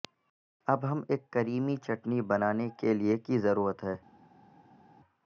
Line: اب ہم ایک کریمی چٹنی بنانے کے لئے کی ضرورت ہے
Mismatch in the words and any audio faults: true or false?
false